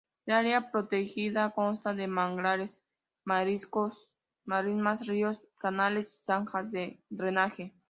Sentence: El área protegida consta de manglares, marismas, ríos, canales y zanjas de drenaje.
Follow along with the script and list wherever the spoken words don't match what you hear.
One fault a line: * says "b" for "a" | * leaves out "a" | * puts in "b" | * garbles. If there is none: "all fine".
all fine